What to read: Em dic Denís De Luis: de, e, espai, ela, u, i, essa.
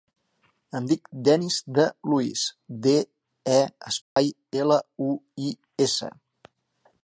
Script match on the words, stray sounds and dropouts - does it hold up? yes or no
no